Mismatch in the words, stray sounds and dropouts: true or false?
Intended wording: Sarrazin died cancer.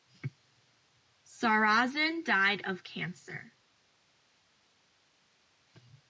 true